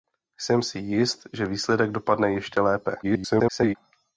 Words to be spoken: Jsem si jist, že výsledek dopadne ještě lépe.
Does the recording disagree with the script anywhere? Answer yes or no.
yes